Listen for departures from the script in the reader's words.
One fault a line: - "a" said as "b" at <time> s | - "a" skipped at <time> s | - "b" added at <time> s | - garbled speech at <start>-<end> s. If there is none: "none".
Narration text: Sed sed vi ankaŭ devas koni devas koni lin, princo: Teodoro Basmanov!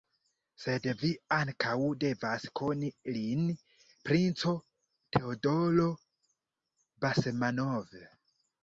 - "sed" skipped at 0.9 s
- "devas koni" skipped at 2.9 s